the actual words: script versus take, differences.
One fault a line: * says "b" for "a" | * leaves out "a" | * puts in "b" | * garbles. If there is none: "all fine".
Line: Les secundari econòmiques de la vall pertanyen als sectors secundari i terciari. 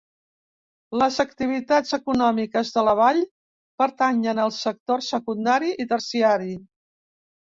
* says "activitats" for "secundari"